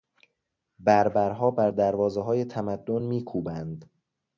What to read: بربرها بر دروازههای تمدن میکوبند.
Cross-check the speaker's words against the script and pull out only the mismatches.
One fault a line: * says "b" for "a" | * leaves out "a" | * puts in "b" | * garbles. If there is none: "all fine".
all fine